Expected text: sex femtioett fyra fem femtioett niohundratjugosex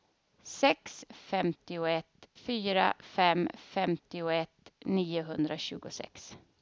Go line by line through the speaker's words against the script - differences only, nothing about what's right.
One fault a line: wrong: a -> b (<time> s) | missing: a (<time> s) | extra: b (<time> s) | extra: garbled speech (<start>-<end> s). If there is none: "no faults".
no faults